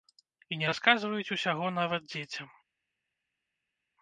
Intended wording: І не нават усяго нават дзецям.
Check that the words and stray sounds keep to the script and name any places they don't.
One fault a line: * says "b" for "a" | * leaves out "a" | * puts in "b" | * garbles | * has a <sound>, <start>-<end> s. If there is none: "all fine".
* says "расказваюць" for "нават"